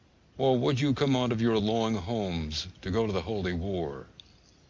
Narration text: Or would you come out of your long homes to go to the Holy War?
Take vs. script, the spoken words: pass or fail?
pass